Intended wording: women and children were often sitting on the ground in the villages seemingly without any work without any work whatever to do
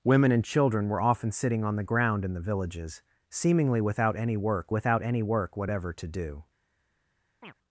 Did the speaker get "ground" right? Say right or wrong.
right